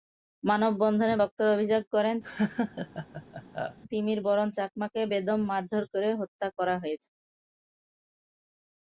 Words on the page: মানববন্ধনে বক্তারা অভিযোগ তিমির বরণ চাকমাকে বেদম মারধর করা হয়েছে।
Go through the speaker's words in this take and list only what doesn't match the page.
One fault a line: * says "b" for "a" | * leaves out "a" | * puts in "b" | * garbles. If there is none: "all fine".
* puts in "করেন"
* puts in "করে হত্যা"